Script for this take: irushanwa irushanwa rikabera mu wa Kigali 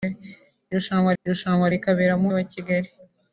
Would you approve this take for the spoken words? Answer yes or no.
yes